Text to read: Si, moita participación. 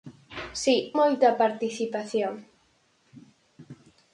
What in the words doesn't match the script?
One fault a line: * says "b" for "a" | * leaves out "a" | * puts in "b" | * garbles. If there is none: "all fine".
all fine